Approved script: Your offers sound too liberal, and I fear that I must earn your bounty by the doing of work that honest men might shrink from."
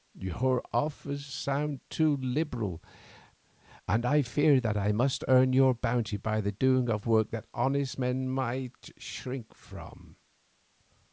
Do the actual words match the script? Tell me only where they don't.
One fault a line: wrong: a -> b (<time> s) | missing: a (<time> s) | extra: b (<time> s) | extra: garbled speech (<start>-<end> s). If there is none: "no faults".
no faults